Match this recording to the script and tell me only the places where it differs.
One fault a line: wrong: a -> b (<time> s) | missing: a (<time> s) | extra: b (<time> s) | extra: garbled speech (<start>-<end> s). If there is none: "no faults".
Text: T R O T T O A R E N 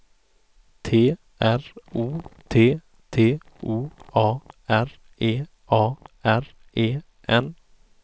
extra: A R E (5.7 s)